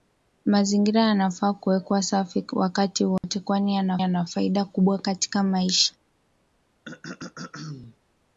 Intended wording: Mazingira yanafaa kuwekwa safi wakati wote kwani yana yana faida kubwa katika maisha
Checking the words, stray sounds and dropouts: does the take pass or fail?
fail